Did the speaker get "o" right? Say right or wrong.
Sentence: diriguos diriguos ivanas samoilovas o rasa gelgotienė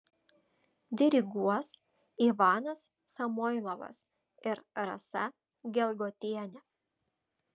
wrong